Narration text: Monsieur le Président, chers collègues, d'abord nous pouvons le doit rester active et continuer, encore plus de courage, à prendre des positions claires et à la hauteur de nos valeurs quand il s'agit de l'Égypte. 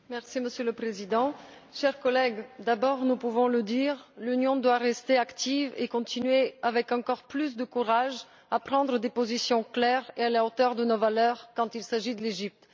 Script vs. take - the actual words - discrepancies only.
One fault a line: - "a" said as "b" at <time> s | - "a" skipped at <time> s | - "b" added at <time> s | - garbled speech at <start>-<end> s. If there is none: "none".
- "dire l'Union" added at 3.6 s
- "avec" added at 6.6 s